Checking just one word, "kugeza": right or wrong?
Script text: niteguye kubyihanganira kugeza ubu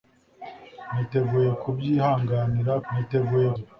wrong